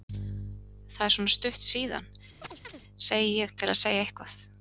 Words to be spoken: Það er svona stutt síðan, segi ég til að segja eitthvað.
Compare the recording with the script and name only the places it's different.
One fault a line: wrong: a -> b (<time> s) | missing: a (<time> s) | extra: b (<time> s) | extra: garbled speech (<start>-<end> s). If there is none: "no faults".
no faults